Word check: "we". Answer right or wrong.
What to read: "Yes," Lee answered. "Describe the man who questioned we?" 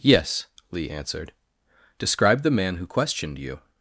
wrong